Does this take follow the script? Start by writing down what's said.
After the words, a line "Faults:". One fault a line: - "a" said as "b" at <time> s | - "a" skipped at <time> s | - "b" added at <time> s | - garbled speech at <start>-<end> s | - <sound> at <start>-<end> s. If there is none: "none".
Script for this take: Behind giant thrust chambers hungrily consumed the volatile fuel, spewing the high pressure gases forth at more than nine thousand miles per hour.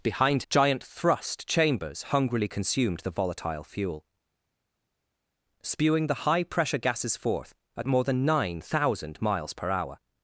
Behind giant thrust chambers hungrily consumed the volatile fuel, spewing the high pressure gases forth at more than nine thousand miles per hour.
Faults:
none